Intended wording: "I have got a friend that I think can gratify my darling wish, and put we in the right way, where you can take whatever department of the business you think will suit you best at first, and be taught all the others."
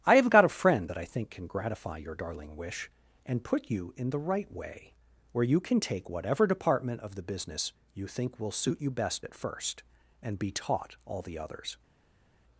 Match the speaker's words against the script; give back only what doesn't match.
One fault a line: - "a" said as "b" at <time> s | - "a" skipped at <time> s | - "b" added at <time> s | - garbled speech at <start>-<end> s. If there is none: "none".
- "my" said as "your" at 2.0 s
- "we" said as "you" at 3.7 s